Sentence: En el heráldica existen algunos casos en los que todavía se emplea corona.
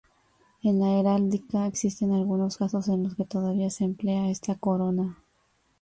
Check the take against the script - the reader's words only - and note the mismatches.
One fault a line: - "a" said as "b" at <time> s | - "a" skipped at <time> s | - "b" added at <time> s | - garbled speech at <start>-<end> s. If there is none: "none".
- "el" said as "la" at 0.8 s
- "esta" added at 4.3 s